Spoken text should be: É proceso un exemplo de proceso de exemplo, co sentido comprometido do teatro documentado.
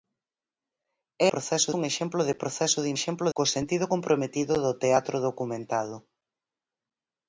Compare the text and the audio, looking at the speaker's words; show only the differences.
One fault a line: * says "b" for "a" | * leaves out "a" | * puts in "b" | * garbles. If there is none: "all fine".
all fine